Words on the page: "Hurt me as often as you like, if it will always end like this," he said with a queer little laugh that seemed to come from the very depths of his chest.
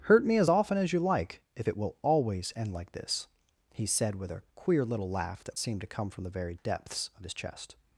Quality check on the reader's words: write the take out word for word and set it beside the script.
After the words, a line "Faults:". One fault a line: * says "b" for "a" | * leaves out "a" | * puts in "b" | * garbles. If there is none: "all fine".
"Hurt me as often as you like, if it will always end like this," he said with a queer little laugh that seemed to come from the very depths of his chest.
Faults:
all fine